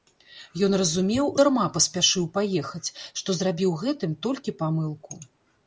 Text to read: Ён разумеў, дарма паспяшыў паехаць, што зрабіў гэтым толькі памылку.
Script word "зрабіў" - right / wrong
right